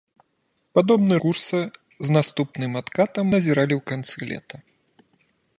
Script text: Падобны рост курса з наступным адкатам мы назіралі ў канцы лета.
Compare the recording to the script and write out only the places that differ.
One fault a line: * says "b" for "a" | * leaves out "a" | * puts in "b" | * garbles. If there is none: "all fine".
* leaves out "рост"
* leaves out "мы"